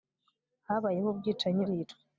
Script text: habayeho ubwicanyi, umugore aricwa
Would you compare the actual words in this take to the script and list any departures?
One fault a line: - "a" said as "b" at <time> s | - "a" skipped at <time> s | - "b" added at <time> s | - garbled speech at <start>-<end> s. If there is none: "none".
- "umugore" skipped at 1.6 s